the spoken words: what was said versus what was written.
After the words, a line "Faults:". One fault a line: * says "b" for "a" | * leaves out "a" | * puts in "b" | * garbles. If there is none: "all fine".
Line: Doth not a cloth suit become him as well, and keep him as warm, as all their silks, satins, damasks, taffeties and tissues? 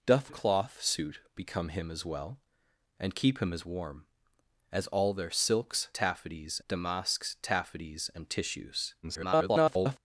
Doth a cloth suit become him as well, and keep him as warm, as all their silks, taffeties, damasks, taffeties and tissues? [garbled]
Faults:
* leaves out "not"
* says "taffeties" for "satins"
* garbles